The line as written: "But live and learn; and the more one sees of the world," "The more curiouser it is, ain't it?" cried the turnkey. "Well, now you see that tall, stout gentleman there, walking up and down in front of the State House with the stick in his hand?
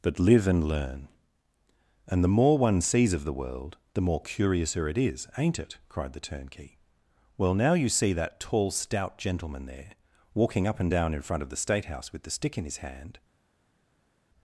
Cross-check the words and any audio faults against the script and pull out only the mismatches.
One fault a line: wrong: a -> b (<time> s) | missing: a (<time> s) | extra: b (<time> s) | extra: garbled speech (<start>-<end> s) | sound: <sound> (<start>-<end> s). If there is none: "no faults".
no faults